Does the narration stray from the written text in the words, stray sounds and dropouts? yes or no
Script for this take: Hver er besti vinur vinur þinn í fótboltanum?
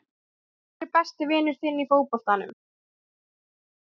yes